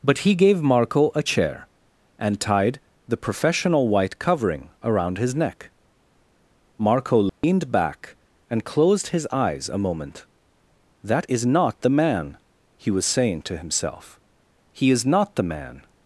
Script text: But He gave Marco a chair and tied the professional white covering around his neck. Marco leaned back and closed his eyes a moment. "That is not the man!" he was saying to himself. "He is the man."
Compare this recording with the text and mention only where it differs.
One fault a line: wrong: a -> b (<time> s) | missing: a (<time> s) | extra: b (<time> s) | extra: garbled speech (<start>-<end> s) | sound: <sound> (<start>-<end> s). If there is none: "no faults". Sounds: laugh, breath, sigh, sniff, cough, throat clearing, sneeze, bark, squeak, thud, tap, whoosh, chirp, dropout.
sound: dropout (7.3-7.4 s)
extra: not (15.1 s)